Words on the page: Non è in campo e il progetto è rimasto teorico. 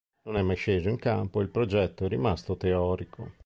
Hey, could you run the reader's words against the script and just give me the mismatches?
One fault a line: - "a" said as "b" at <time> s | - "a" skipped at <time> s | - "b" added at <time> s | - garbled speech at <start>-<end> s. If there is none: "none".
- "mai sceso" added at 0.4 s